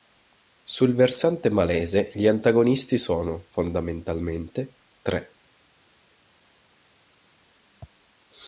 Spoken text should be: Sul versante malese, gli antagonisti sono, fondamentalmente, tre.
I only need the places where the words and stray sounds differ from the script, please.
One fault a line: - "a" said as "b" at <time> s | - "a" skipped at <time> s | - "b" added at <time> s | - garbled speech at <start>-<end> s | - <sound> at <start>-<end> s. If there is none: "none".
none